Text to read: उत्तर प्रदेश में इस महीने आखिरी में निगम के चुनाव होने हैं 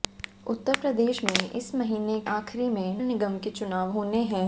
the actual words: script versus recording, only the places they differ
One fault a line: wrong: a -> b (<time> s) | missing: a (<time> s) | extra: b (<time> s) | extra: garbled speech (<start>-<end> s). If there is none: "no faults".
no faults